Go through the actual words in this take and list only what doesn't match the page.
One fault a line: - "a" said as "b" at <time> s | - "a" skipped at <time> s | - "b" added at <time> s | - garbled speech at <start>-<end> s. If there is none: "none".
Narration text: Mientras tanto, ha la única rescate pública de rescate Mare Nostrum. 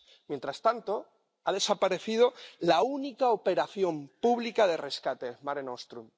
- "desaparecido" added at 1.5 s
- "rescate" said as "operación" at 3.3 s